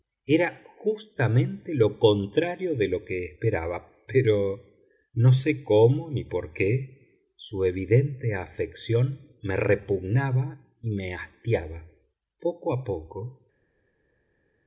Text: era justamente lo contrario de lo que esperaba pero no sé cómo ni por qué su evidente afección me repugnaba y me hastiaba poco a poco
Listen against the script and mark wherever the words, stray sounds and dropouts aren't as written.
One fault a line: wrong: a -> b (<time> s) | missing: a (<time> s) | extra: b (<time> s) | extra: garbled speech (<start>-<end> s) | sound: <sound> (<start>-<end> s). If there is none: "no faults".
no faults